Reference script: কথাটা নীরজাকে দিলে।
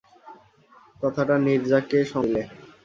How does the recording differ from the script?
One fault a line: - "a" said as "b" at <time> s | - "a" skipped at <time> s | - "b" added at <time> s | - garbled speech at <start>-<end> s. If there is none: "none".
none